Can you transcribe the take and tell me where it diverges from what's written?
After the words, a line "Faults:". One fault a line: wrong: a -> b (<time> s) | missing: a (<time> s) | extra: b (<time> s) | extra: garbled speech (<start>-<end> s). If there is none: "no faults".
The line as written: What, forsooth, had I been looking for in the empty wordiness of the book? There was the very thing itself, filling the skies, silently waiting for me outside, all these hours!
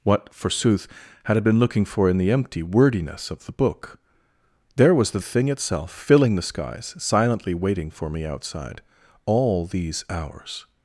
What, forsooth, had I been looking for in the empty wordiness of the book? There was the thing itself, filling the skies, silently waiting for me outside, all these hours!
Faults:
missing: very (5.2 s)